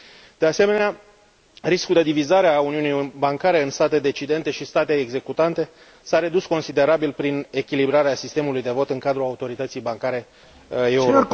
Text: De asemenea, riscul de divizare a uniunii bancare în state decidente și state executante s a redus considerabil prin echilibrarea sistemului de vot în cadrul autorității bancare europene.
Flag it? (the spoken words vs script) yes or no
no